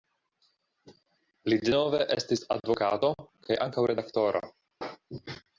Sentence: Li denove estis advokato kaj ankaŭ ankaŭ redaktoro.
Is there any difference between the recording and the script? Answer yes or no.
yes